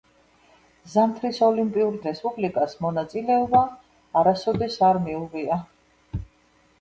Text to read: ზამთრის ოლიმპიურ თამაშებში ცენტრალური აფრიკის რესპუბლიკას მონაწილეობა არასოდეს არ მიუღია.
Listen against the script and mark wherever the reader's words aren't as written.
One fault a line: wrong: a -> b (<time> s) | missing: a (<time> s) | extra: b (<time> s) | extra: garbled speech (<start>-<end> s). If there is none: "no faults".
missing: თამაშებში ცენტრალური აფრიკის (2.0 s)